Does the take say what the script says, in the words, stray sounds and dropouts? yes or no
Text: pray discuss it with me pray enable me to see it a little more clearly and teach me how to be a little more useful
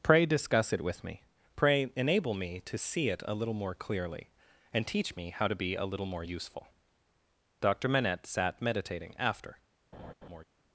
no